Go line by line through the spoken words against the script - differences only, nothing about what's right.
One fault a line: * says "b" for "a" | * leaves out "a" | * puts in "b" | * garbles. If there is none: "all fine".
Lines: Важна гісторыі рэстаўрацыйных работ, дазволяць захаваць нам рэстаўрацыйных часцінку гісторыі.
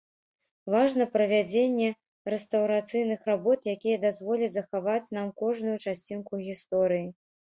* says "правядзенне" for "гісторыі"
* puts in "якія"
* says "кожную" for "рэстаўрацыйных"